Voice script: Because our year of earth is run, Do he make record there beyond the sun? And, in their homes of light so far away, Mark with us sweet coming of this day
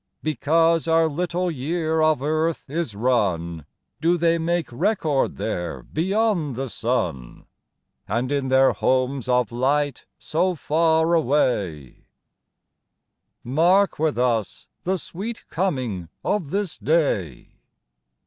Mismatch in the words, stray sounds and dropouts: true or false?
true